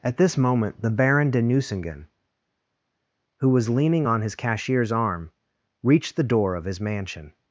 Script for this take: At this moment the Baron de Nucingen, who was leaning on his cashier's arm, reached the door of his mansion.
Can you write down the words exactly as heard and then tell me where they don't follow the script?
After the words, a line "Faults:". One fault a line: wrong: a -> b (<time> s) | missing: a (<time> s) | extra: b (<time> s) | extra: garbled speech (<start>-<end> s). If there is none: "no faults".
At this moment the Baron de Nucingen, who was leaning on his cashier's arm, reached the door of his mansion.
Faults:
no faults